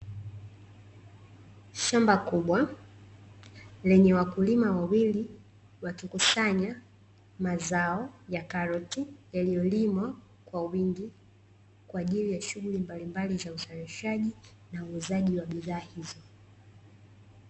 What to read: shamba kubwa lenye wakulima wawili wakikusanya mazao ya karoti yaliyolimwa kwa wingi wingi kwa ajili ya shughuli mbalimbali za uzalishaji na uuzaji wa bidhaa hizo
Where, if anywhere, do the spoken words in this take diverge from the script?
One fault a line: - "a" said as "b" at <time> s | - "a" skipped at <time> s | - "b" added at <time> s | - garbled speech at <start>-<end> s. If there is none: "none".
- "wingi" skipped at 11.1 s